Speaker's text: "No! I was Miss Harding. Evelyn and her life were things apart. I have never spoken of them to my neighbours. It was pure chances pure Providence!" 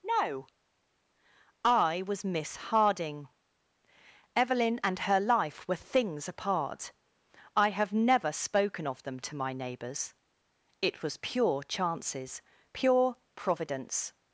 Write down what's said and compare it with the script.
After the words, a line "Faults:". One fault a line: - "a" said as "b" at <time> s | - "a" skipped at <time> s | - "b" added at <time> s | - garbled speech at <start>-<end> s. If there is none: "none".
"No! I was Miss Harding. Evelyn and her life were things apart. I have never spoken of them to my neighbours. It was pure chances pure Providence!"
Faults:
none